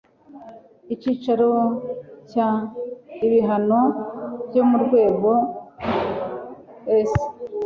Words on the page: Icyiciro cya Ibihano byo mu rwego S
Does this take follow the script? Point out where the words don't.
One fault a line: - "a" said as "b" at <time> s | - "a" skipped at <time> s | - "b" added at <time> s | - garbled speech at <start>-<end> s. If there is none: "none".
none